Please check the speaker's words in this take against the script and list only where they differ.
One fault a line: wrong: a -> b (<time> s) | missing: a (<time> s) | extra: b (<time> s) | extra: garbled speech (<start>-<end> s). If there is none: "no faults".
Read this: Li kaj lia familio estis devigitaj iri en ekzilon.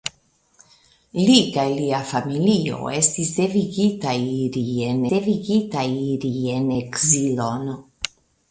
extra: devigitaj iri en (5.1 s)